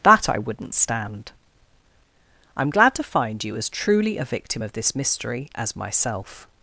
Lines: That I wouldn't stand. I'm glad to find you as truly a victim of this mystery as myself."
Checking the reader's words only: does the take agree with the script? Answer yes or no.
yes